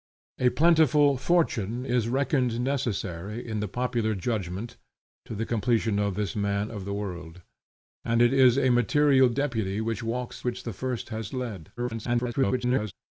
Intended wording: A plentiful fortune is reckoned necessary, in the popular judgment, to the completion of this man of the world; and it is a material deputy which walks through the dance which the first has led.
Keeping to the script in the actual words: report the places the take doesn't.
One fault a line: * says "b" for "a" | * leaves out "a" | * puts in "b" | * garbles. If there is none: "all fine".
* leaves out "through the dance"
* garbles